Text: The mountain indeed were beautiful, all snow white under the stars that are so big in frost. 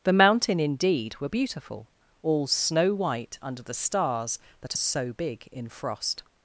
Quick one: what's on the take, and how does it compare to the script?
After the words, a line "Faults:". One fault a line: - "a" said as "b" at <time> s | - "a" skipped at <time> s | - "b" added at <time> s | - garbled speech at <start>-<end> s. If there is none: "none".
The mountain indeed were beautiful, all snow white under the stars that are so big in frost.
Faults:
none